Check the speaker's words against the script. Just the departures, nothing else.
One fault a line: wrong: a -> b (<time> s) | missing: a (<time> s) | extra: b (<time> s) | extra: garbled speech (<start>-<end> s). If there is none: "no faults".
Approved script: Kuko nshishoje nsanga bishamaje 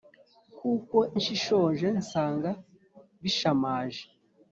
no faults